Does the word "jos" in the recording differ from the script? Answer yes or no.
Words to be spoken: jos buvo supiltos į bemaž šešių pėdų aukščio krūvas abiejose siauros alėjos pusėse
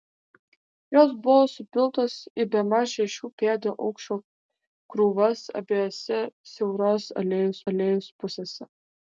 no